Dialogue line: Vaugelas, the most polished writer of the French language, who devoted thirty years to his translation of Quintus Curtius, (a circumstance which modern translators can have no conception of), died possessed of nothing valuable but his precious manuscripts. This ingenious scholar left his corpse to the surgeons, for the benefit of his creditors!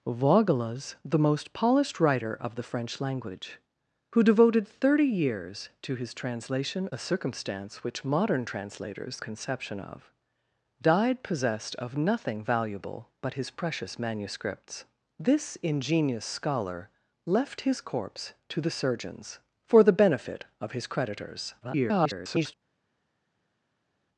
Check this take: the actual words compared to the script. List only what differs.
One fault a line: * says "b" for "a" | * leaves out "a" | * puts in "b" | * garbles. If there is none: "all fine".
* leaves out "of Quintus Curtius"
* leaves out "can have no"
* garbles